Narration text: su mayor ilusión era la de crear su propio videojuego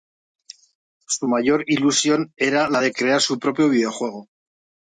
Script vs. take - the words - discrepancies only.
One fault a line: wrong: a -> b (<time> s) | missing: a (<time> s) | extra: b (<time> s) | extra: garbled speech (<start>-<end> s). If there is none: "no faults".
no faults